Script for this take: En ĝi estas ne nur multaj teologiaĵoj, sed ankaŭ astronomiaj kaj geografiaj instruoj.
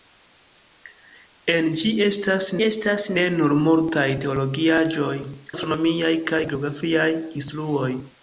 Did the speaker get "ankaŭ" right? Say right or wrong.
wrong